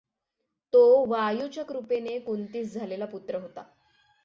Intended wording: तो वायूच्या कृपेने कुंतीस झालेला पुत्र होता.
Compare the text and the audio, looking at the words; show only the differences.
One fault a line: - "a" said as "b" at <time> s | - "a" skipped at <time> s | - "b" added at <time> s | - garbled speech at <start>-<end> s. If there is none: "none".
none